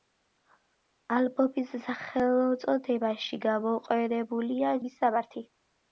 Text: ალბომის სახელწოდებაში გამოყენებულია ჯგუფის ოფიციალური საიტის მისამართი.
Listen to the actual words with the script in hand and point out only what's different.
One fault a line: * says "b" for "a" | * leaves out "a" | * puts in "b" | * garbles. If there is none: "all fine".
* leaves out "ჯგუფის ოფიციალური საიტის"